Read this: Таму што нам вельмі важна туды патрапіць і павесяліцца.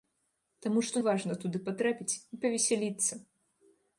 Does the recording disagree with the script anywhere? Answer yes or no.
yes